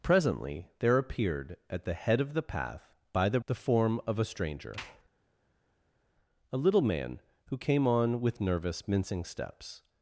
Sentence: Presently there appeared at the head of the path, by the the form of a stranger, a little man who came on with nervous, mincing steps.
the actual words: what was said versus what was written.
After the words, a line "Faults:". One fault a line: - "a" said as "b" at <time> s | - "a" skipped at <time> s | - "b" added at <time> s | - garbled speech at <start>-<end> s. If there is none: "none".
Presently there appeared at the head of the path, by the the form of a stranger, a little man who came on with nervous, mincing steps.
Faults:
none